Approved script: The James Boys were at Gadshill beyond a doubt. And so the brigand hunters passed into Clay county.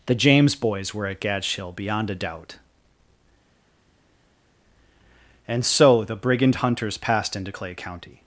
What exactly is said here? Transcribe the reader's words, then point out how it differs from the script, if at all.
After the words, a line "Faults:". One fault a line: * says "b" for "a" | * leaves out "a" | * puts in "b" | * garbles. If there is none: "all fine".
The James Boys were at Gadshill beyond a doubt. And so the brigand hunters passed into Clay county.
Faults:
all fine